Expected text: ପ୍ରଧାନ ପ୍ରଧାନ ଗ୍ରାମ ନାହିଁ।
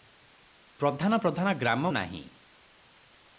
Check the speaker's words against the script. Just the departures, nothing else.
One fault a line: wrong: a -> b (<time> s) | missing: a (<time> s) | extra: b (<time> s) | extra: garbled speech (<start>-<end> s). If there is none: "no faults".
no faults